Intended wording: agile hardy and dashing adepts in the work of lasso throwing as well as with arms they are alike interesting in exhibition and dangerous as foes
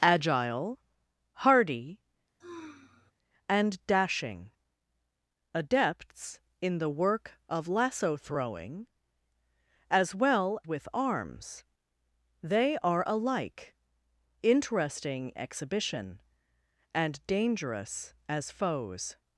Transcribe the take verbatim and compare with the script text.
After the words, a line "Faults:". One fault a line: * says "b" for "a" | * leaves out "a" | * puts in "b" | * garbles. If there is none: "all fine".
agile hardy and dashing adepts in the work of lasso throwing as well with arms they are alike interesting exhibition and dangerous as foes
Faults:
* leaves out "as"
* leaves out "in"